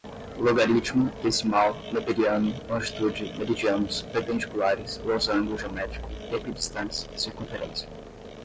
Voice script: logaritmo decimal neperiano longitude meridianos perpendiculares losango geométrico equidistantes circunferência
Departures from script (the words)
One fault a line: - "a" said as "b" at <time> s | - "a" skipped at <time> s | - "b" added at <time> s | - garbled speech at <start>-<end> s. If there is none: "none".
none